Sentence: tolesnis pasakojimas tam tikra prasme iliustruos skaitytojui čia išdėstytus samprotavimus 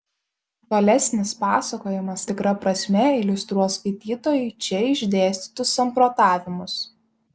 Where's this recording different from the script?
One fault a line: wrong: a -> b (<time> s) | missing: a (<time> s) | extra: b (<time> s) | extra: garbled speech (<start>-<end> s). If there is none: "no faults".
missing: tam (2.2 s)